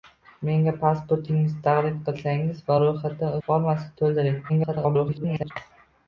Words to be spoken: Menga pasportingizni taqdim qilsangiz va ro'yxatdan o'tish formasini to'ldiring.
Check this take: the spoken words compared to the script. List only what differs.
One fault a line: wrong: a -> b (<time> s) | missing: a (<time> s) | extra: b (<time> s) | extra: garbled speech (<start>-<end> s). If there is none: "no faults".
missing: o'tish (3.4 s)
extra: garbled speech (4.5-5.5 s)